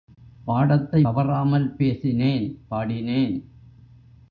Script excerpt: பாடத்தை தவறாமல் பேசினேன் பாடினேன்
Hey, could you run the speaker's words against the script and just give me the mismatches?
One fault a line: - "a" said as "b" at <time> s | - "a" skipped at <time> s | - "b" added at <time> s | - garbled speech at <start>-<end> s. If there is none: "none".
none